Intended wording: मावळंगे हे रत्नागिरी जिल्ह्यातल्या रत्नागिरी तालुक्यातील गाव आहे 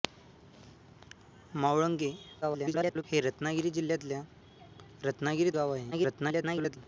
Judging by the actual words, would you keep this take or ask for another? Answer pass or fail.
fail